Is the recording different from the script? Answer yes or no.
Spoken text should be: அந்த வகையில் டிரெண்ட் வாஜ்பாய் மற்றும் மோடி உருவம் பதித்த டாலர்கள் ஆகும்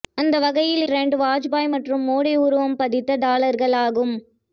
no